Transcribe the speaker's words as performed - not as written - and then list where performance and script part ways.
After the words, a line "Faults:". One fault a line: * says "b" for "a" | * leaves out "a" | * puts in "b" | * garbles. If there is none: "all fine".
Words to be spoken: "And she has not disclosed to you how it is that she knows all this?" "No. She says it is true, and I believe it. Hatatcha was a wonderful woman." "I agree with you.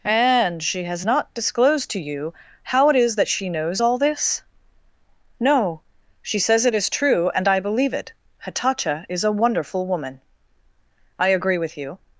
"And she has not disclosed to you how it is that she knows all this?" "No. She says it is true, and I believe it. Hatatcha is a wonderful woman." "I agree with you.
Faults:
* says "is" for "was"